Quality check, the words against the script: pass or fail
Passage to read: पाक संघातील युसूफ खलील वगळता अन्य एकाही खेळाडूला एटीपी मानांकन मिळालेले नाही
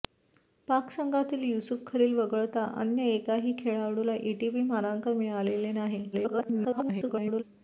fail